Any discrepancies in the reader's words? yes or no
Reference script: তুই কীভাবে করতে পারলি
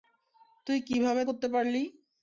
no